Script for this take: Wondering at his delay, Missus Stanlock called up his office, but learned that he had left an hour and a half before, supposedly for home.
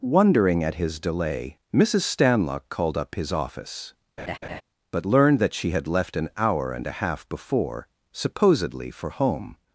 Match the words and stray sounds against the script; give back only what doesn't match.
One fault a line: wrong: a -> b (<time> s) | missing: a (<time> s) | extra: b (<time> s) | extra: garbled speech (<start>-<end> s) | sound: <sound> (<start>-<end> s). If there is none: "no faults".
sound: laugh (4.2-4.6 s)
wrong: he -> she (5.5 s)